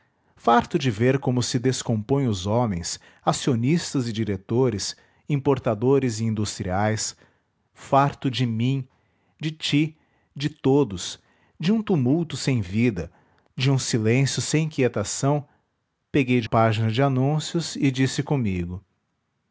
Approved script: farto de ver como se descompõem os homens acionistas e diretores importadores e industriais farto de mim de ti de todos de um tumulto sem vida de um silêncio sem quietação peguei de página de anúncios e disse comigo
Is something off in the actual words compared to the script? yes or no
no